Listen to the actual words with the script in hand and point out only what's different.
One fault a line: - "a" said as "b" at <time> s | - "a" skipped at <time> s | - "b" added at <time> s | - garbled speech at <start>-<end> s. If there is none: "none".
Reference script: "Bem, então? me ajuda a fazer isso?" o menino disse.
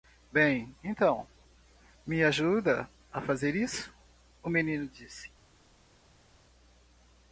none